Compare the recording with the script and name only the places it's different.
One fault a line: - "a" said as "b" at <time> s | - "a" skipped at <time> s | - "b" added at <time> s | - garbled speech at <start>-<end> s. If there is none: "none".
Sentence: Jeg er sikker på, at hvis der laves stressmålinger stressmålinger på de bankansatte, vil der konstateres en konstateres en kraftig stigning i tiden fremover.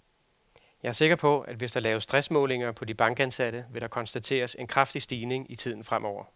- "stressmålinger" skipped at 2.7 s
- "konstateres en" skipped at 4.7 s